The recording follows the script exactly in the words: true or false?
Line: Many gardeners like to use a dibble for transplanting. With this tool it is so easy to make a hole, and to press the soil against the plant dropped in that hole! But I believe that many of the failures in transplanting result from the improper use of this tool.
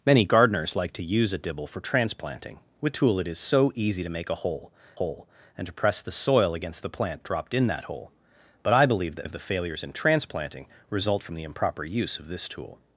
false